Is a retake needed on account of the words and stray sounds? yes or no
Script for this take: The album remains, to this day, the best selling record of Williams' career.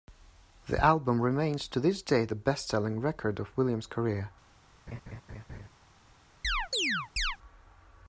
yes